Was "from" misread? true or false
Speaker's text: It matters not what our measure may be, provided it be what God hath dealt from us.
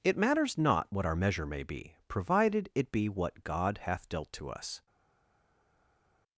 true